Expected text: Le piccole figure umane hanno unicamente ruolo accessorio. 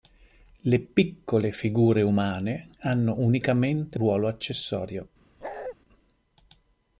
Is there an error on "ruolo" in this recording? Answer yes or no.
no